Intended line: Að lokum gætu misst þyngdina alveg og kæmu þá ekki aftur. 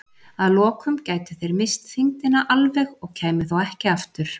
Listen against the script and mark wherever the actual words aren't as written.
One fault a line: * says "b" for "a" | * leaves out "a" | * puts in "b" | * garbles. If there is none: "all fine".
* puts in "þeir"